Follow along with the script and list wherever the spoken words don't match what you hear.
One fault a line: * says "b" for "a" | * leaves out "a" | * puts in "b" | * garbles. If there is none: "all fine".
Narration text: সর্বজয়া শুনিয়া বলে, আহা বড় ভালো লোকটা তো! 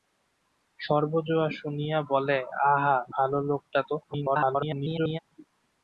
* leaves out "বড়"
* garbles